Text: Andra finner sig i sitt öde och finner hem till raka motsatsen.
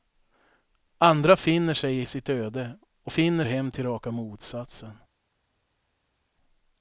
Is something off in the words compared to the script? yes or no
no